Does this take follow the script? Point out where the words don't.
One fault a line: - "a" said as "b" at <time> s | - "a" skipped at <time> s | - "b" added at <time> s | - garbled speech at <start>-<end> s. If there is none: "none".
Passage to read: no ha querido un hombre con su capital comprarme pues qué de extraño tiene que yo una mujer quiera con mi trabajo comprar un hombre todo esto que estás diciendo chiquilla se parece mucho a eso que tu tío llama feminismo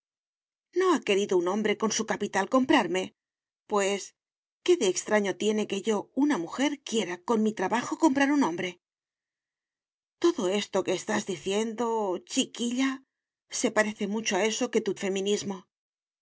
- "tío llama" skipped at 14.9 s